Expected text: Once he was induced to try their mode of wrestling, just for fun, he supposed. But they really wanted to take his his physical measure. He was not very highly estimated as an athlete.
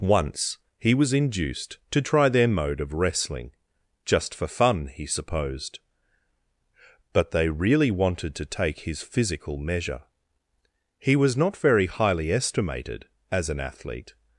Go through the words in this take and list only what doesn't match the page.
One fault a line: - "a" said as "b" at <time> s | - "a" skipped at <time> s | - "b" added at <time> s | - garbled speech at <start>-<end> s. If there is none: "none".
- "his" skipped at 9.0 s